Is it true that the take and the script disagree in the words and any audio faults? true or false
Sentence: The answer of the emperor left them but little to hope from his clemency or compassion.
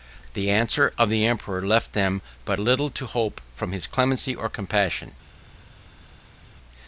false